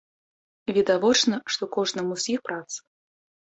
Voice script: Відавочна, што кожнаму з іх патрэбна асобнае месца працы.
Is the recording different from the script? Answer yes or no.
yes